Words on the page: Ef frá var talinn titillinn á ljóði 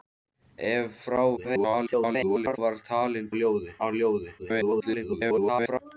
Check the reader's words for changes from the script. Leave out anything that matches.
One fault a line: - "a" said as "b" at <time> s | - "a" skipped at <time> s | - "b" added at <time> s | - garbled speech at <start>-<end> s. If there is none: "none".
- garbled speech at 1.4-2.6 s
- "titillinn" said as "ljóði" at 3.4 s
- garbled speech at 4.4-5.8 s